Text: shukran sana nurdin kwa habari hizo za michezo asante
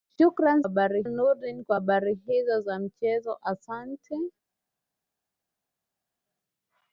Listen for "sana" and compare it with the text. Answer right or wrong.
wrong